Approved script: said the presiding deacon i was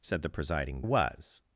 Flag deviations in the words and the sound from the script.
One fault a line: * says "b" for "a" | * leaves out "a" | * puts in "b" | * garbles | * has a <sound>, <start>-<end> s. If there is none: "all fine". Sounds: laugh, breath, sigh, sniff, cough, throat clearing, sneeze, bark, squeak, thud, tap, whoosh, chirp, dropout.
* leaves out "deacon i"